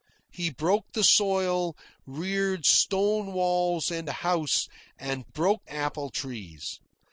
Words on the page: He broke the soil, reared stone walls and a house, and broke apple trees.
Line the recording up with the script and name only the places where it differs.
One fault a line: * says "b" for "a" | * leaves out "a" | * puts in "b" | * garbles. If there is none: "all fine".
all fine